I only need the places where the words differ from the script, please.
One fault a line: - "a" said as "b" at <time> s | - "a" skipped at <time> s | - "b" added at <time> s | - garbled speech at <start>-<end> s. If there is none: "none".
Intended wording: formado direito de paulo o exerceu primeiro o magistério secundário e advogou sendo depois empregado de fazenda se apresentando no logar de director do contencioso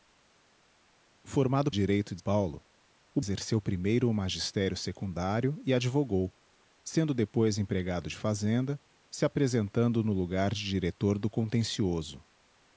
none